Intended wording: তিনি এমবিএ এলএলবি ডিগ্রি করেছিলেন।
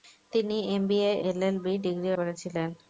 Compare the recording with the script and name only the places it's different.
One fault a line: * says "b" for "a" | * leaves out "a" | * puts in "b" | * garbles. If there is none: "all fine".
all fine